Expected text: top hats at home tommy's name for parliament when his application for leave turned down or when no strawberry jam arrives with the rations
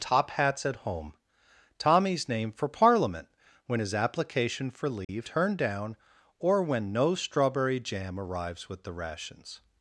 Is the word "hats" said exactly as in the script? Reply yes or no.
yes